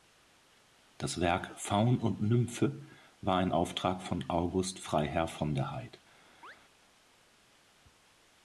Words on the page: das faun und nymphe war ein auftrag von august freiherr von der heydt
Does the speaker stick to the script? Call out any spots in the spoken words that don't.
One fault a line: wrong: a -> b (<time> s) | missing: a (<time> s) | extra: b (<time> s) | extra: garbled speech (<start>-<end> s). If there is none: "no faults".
extra: werk (1.2 s)